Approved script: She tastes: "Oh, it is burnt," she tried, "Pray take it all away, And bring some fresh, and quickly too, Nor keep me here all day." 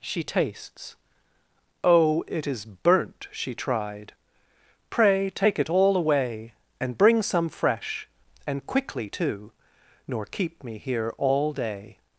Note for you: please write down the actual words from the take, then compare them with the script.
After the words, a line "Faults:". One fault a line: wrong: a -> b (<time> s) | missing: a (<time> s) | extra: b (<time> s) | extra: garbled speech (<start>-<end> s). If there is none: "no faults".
She tastes: "Oh, it is burnt," she tried, "Pray take it all away, And bring some fresh, and quickly too, Nor keep me here all day."
Faults:
no faults